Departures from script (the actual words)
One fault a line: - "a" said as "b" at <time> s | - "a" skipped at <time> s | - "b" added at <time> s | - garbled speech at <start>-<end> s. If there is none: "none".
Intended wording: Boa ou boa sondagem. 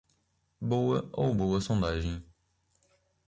none